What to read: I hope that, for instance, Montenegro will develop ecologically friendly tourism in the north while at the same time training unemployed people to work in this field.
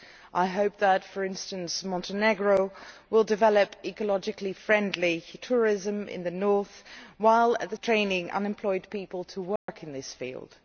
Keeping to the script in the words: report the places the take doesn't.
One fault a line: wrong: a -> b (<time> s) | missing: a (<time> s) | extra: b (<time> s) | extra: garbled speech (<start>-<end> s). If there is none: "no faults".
missing: same time (7.8 s)